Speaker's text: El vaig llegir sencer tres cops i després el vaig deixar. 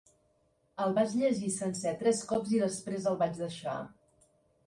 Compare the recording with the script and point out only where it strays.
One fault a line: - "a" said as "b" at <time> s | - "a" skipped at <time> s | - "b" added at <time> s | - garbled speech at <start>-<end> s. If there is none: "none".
none